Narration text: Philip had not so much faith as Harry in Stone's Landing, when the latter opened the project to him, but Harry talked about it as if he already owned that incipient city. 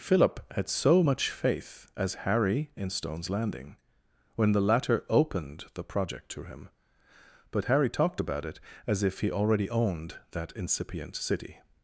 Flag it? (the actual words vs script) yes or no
yes